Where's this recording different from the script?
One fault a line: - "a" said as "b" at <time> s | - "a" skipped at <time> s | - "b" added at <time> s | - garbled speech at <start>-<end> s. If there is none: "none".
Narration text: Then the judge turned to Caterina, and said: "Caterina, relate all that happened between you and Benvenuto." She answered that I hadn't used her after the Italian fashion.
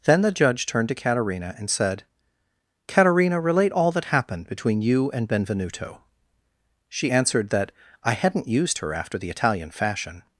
none